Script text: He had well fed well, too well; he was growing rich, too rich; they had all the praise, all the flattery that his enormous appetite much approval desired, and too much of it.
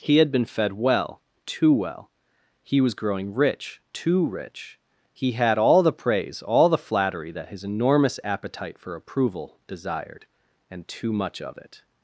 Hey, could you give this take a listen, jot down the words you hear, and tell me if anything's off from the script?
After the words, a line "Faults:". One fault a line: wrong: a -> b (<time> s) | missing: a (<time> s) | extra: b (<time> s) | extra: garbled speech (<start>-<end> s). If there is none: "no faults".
He had been fed well, too well; he was growing rich, too rich; he had all the praise, all the flattery that his enormous appetite for approval desired, and too much of it.
Faults:
wrong: well -> been (0.3 s)
wrong: they -> he (5.1 s)
wrong: much -> for (8.8 s)